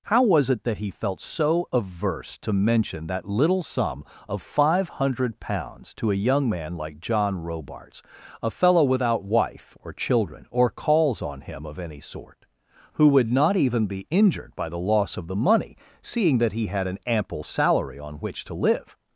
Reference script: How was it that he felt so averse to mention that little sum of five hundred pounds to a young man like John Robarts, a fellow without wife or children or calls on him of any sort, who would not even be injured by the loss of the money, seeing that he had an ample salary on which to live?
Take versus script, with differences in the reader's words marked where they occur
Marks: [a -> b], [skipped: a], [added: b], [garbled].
How was it that he felt so averse to mention that little sum of five hundred pounds to a young man like John Robarts, a fellow without wife or children or calls on him of any sort, who would not even be injured by the loss of the money, seeing that he had an ample salary on which to live?